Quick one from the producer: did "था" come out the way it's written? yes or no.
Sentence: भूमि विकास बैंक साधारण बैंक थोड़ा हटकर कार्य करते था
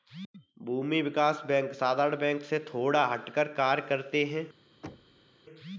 no